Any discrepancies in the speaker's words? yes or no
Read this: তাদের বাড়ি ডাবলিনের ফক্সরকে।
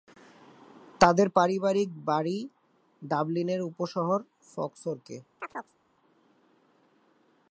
yes